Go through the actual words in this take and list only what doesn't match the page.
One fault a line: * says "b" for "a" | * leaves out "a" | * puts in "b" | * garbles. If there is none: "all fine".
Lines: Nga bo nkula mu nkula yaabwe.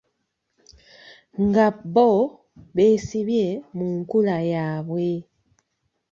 * says "beesibye" for "nkula"